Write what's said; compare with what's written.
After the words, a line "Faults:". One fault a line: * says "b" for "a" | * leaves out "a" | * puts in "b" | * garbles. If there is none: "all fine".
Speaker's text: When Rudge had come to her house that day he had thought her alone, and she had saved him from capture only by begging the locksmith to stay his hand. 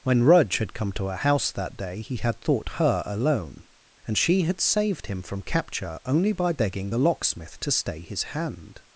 When Rudge had come to her house that day he had thought her alone, and she had saved him from capture only by begging the locksmith to stay his hand.
Faults:
all fine